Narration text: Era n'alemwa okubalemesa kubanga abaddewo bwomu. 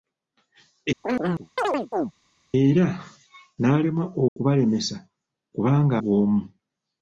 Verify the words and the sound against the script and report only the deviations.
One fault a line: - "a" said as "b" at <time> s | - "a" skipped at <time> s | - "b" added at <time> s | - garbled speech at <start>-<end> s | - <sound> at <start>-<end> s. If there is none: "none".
- chirp at 1.0-2.1 s
- dropout at 4.3-4.4 s
- "abaddewo" skipped at 5.9 s